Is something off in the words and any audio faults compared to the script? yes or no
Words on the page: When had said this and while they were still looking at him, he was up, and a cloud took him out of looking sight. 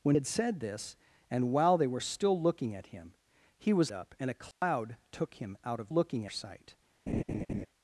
yes